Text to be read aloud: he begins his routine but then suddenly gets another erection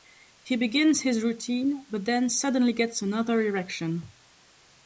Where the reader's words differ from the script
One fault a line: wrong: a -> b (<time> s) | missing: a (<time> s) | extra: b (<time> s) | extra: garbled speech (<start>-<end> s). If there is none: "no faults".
no faults